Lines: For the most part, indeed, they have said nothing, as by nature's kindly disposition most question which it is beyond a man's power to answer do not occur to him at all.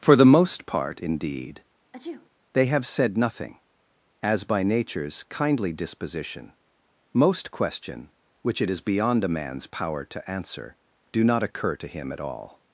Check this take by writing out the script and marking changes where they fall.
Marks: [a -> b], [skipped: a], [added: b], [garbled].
For the most part, indeed, they have said nothing, as by nature's kindly disposition most question which it is beyond a man's power to answer do not occur to him at all.